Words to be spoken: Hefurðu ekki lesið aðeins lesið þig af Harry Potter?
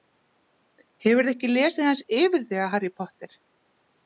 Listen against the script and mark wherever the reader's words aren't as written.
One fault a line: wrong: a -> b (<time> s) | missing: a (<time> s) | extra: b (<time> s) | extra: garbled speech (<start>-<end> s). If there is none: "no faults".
wrong: lesið -> yfir (2.2 s)